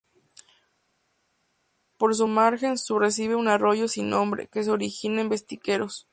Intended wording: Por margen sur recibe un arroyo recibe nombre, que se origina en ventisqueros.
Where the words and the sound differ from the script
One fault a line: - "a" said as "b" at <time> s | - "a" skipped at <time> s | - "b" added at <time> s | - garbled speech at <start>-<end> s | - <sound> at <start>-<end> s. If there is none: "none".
- "su" added at 2.1 s
- "recibe" said as "sin" at 3.9 s